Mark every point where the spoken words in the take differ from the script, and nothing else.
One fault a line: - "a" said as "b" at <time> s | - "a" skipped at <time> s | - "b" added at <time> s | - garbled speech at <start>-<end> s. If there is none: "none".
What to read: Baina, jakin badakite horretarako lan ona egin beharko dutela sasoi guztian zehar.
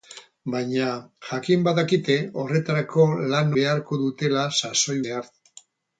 - "ona egin" skipped at 3.5 s
- "guztian" skipped at 5.0 s